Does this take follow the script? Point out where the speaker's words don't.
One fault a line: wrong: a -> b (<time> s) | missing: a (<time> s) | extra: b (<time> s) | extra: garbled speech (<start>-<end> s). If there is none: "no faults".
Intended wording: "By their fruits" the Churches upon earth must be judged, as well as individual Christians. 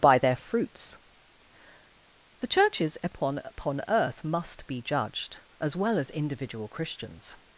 extra: upon (3.4 s)